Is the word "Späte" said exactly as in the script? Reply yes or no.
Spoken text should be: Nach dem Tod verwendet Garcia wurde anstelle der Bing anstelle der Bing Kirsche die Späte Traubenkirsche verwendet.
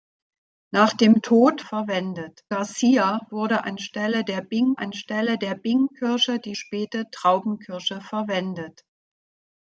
yes